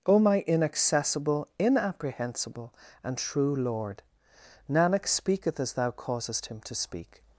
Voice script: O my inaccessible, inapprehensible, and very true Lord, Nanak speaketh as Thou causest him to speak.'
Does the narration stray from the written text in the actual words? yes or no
yes